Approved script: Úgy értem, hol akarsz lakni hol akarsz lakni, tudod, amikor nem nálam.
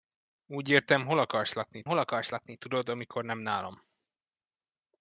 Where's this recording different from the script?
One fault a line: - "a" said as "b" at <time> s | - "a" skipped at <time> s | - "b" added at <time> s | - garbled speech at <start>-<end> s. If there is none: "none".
none